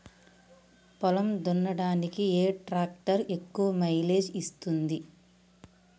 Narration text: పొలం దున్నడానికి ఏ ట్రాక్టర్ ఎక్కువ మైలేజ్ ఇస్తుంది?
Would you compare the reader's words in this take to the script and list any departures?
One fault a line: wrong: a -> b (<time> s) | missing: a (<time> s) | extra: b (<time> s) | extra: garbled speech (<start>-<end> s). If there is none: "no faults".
no faults